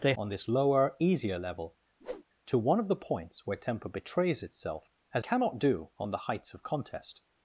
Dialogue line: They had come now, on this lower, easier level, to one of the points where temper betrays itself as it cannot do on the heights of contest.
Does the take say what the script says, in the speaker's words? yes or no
no